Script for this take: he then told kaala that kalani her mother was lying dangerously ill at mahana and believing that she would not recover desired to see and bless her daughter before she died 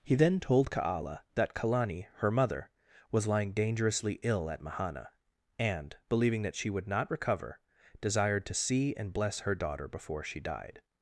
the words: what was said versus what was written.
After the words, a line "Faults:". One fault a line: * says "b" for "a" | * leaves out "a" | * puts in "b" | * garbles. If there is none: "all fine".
he then told kaala that kalani her mother was lying dangerously ill at mahana and believing that she would not recover desired to see and bless her daughter before she died
Faults:
all fine